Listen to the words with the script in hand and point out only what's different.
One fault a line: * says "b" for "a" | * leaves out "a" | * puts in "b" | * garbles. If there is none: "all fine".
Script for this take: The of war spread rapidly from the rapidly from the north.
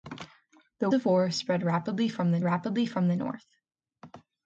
all fine